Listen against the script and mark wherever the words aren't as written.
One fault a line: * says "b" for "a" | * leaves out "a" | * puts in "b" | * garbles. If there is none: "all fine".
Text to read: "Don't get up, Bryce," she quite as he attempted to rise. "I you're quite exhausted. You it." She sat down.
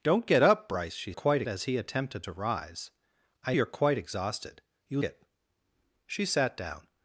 all fine